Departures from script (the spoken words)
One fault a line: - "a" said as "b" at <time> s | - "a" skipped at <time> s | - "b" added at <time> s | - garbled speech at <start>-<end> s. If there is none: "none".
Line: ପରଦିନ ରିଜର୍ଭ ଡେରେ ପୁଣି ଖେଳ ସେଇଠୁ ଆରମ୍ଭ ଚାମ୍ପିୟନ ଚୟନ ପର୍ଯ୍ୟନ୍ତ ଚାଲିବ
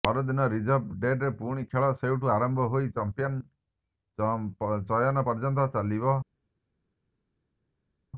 - "ହୋଇ" added at 2.7 s